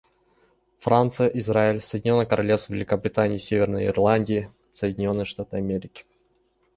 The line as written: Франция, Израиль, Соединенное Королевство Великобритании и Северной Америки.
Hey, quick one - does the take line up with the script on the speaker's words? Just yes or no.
no